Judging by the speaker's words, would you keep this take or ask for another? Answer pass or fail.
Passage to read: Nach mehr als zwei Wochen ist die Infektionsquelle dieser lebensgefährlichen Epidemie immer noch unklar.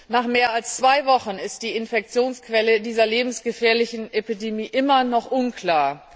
pass